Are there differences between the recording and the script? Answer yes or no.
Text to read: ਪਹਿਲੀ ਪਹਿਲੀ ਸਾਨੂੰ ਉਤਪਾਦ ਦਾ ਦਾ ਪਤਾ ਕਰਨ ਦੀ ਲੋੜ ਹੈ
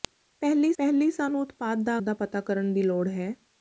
no